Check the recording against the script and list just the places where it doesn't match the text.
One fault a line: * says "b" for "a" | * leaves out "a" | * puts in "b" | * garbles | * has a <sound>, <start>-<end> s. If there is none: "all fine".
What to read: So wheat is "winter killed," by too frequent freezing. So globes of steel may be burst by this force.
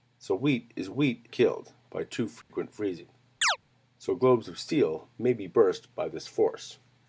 * says "wheat" for "winter"
* has a dropout, 2.4-2.5 s
* has a chirp, 3.4-3.6 s